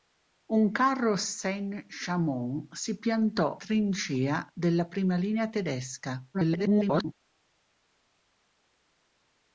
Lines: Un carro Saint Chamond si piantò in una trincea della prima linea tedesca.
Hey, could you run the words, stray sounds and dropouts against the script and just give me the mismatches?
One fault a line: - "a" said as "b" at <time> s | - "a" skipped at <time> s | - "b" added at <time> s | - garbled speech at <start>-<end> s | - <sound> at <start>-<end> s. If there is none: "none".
- "in una" skipped at 3.6 s
- garbled speech at 6.3-7.1 s